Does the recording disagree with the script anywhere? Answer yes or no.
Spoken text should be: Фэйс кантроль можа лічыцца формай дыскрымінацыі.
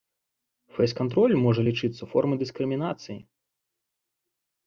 no